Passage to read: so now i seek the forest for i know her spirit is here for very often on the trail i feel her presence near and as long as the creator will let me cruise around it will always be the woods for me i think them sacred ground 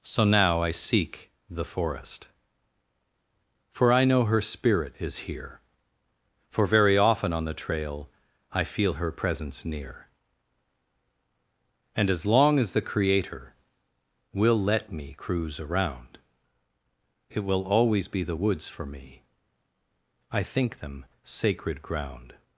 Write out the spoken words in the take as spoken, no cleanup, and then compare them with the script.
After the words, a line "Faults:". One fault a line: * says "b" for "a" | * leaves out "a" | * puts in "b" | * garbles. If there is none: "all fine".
so now i seek the forest for i know her spirit is here for very often on the trail i feel her presence near and as long as the creator will let me cruise around it will always be the woods for me i think them sacred ground
Faults:
all fine